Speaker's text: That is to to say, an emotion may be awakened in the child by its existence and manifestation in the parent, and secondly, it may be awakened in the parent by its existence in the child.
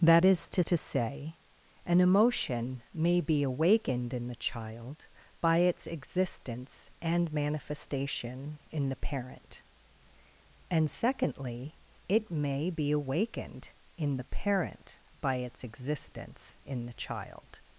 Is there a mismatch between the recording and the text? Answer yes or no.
no